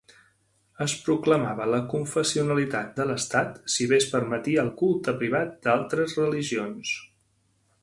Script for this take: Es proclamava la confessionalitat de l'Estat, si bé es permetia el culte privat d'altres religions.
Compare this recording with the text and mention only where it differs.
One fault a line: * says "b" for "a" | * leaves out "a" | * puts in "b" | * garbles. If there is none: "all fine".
all fine